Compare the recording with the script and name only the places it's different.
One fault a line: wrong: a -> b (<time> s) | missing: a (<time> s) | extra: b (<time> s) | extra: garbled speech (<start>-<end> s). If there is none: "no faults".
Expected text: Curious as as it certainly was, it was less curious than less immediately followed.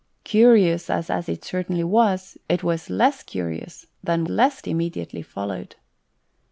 no faults